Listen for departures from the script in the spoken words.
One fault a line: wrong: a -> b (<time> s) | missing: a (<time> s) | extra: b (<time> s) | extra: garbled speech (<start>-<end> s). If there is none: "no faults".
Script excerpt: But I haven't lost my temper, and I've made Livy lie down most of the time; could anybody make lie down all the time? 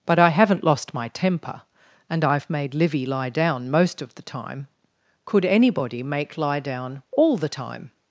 no faults